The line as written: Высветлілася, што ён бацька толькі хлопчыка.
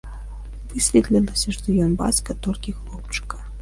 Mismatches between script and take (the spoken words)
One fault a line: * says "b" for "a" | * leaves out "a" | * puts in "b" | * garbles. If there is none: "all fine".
all fine